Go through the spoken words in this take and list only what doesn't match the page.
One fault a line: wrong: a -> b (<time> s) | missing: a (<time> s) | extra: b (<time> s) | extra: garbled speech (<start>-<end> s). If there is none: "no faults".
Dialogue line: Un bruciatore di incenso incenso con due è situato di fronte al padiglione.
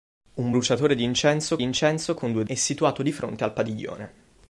no faults